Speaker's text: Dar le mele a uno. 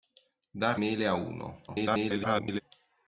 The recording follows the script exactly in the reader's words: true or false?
false